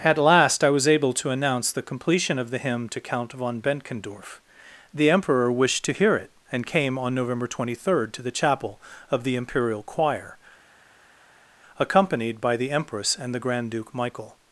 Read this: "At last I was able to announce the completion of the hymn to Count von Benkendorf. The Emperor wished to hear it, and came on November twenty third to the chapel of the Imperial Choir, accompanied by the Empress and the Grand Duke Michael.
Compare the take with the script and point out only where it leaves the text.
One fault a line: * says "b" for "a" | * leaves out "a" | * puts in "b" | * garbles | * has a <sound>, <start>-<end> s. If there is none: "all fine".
all fine